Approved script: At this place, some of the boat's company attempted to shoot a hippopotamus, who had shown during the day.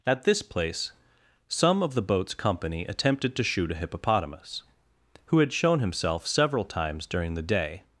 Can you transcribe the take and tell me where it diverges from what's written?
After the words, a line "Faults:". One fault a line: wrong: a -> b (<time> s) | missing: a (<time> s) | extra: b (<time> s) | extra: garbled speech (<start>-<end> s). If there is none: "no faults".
At this place, some of the boat's company attempted to shoot a hippopotamus, who had shown himself several times during the day.
Faults:
extra: himself several times (5.8 s)